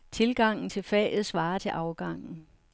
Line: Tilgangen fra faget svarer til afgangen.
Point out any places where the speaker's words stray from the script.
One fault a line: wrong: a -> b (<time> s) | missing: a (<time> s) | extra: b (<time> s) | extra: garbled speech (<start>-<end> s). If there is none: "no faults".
wrong: fra -> til (0.7 s)